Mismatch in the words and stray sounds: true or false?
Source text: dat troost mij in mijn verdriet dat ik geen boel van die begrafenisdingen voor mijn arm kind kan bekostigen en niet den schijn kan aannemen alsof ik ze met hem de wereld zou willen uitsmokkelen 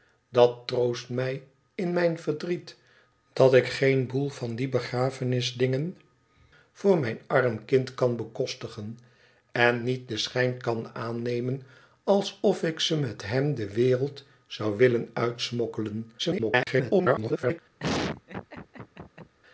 true